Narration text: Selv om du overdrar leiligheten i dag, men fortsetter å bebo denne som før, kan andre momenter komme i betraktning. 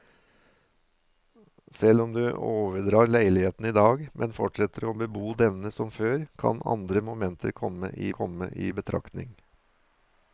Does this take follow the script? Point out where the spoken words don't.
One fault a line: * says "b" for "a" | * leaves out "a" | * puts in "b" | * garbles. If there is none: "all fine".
* puts in "komme i"